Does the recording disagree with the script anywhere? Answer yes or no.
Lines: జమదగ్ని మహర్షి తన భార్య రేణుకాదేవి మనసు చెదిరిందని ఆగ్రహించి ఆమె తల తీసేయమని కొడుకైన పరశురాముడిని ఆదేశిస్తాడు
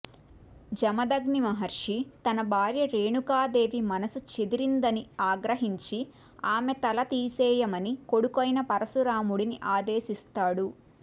no